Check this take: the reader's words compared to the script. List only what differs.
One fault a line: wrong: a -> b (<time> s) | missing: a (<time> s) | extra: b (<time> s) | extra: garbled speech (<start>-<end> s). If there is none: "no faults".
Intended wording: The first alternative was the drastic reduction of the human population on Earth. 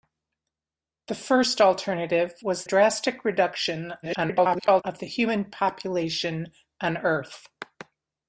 missing: the (2.7 s)
extra: garbled speech (4.0-4.8 s)